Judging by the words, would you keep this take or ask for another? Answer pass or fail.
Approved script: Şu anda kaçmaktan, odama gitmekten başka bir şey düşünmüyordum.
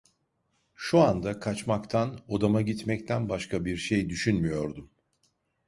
pass